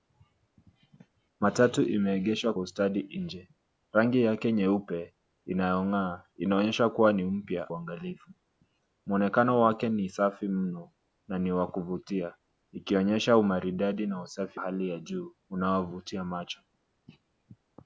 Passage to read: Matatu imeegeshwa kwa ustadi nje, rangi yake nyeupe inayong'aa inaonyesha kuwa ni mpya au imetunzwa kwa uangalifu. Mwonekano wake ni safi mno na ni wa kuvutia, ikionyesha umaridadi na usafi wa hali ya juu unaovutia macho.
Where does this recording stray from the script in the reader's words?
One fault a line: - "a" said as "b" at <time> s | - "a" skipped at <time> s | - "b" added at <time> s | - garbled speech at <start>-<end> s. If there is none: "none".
- "kwa" skipped at 2.5 s
- "au imetunzwa kwa" skipped at 7.7 s
- "wa" skipped at 14.6 s